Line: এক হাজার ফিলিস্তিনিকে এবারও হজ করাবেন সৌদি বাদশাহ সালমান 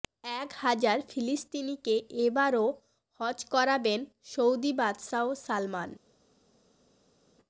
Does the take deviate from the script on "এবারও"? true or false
false